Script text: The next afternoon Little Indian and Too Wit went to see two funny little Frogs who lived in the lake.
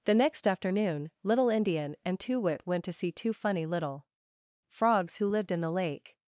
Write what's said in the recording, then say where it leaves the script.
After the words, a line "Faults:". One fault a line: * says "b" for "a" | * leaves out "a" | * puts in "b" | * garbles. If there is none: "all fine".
The next afternoon Little Indian and Too Wit went to see two funny little Frogs who lived in the lake.
Faults:
all fine